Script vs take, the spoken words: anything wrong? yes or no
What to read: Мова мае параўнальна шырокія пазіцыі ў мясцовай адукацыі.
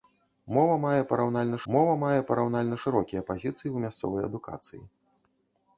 yes